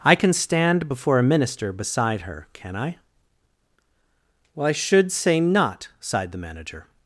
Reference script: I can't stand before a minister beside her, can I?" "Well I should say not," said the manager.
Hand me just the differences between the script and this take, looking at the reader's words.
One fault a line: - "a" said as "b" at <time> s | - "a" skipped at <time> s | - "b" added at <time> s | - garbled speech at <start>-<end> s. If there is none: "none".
- "can't" said as "can" at 0.1 s
- "said" said as "sighed" at 6.0 s